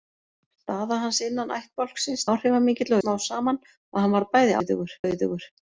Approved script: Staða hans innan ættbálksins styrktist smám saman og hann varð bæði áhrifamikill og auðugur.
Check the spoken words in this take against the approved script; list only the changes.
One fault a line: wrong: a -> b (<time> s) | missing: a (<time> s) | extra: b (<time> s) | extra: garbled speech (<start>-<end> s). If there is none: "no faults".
wrong: styrktist -> áhrifamikill (2.3 s)
wrong: áhrifamikill -> auðugur (4.6 s)